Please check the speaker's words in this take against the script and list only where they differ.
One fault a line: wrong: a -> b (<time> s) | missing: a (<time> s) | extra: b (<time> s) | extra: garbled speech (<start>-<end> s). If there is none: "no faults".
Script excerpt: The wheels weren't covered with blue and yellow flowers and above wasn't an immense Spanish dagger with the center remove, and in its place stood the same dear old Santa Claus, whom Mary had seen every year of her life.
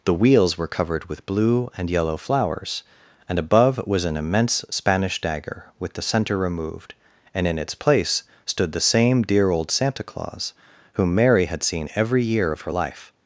wrong: weren't -> were (0.6 s)
wrong: wasn't -> was (3.9 s)
wrong: remove -> removed (6.4 s)